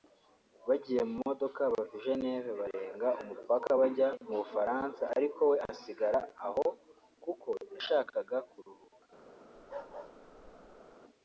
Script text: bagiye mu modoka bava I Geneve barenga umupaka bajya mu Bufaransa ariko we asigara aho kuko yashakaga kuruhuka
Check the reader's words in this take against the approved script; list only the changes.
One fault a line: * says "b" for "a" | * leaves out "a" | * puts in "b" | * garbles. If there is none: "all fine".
all fine